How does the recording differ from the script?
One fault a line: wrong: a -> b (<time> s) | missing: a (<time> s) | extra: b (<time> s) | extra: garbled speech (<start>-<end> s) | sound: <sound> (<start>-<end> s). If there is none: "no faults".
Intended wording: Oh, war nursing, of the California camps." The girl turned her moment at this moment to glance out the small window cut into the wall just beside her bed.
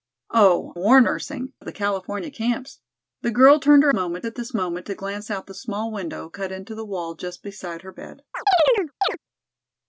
sound: chirp (8.3-9.2 s)